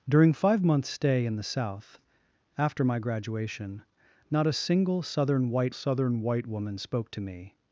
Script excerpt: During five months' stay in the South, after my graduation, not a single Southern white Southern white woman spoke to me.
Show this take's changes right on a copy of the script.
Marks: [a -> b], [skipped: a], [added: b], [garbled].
During five months' stay in the South, after my graduation, not a single Southern white Southern white woman spoke to me.